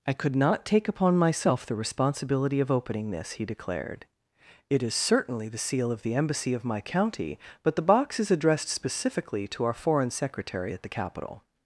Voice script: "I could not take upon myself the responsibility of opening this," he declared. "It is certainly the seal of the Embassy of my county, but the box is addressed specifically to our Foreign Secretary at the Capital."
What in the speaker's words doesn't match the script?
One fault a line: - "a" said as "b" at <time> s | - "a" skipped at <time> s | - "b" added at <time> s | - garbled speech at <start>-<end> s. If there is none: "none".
none